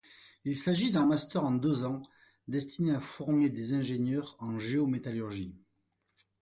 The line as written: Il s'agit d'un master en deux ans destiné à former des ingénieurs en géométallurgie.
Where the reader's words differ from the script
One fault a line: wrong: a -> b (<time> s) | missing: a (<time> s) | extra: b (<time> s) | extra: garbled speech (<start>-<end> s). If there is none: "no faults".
no faults